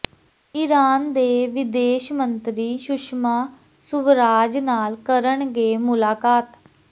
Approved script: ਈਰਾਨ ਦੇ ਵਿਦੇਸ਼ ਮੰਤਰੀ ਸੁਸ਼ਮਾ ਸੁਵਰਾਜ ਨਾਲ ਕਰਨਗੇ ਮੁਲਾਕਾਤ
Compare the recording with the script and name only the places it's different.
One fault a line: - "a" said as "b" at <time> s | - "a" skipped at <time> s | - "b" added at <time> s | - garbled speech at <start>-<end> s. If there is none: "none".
none